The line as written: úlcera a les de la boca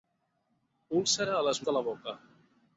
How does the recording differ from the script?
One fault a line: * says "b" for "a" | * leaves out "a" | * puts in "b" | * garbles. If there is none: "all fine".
all fine